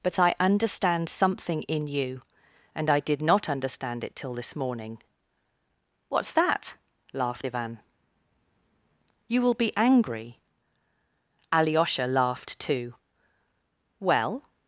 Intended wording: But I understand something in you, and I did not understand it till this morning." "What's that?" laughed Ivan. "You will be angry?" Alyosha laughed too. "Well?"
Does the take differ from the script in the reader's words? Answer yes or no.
no